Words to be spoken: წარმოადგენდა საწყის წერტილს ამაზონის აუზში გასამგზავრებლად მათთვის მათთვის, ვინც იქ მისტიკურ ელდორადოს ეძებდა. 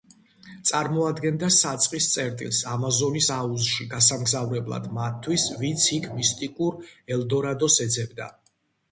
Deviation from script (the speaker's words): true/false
true